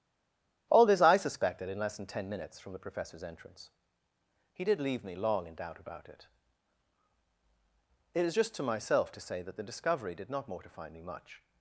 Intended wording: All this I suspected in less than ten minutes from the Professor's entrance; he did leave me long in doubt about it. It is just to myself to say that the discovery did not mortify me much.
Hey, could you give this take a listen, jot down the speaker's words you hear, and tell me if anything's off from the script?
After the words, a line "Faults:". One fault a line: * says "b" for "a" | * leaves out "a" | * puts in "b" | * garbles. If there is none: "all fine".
All this I suspected in less than ten minutes from the Professor's entrance; he did leave me long in doubt about it. It is just to myself to say that the discovery did not mortify me much.
Faults:
all fine